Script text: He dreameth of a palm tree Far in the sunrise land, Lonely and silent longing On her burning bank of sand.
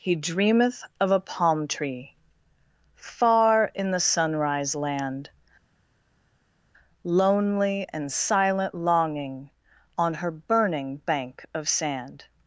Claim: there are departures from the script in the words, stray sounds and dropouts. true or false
false